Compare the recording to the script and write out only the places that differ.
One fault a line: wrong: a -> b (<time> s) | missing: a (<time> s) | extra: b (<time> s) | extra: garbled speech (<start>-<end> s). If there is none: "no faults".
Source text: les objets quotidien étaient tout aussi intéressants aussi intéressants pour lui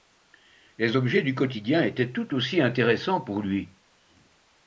extra: du (1.2 s)
missing: aussi intéressants (3.2 s)